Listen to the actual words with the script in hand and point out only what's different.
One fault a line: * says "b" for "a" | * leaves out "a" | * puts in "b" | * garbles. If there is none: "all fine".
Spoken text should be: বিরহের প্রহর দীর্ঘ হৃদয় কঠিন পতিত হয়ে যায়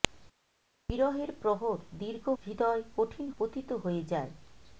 all fine